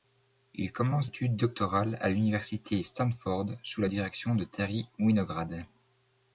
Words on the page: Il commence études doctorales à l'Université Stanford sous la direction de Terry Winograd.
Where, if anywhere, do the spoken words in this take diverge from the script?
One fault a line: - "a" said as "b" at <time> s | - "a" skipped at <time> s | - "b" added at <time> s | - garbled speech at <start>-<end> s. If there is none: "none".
none